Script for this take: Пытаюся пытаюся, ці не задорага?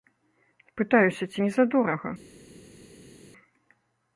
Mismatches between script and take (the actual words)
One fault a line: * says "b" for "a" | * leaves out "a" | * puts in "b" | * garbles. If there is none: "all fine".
* leaves out "пытаюся"